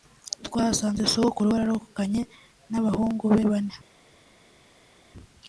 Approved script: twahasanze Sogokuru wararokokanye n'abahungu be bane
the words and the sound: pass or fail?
pass